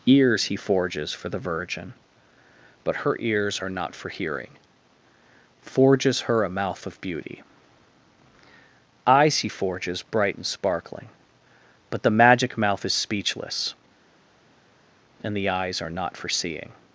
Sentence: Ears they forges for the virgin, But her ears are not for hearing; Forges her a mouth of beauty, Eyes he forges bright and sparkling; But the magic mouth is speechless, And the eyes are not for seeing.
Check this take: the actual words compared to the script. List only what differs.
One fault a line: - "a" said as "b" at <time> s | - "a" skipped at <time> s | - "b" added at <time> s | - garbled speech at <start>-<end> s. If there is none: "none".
- "they" said as "he" at 0.5 s